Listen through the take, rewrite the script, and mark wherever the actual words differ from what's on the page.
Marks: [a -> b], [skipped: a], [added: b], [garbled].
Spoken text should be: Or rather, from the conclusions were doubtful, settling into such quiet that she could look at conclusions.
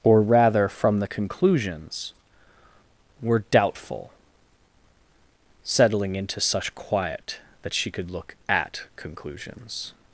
Or rather, from the conclusions were doubtful, settling into such quiet that she could look at conclusions.